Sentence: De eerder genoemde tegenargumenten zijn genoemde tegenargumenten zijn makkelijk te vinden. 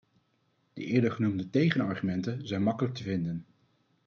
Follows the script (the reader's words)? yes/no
no